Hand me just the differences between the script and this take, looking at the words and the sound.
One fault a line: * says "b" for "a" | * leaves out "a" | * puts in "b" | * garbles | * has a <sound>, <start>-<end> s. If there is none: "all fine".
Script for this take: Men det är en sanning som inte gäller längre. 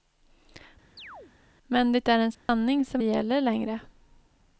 * has a chirp, 1.0-1.3 s
* has a dropout, 2.3-2.5 s
* leaves out "inte"